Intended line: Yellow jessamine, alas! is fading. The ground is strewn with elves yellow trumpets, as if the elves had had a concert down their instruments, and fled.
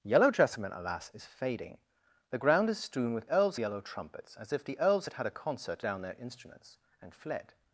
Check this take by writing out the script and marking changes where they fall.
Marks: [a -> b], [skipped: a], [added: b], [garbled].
Yellow jessamine, alas! is fading. The ground is strewn with elves yellow trumpets, as if the elves had had a concert down their instruments, and fled.